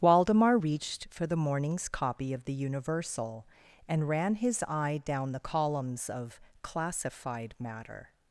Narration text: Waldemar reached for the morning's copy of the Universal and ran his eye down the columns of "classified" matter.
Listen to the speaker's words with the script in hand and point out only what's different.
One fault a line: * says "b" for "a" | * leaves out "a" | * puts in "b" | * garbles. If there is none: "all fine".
all fine